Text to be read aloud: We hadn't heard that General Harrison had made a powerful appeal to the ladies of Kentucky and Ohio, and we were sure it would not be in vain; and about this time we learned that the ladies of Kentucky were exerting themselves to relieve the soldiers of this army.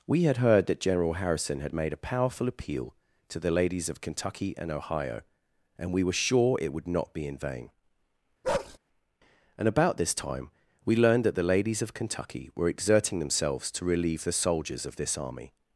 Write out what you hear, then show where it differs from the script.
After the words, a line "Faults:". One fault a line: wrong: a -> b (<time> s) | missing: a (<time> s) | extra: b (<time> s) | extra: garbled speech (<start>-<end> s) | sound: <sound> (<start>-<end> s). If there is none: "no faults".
We had heard that General Harrison had made a powerful appeal to the ladies of Kentucky and Ohio, and we were sure it would not be in vain; and about this time we learned that the ladies of Kentucky were exerting themselves to relieve the soldiers of this army.
Faults:
wrong: hadn't -> had (0.2 s)
sound: bark (8.4-8.8 s)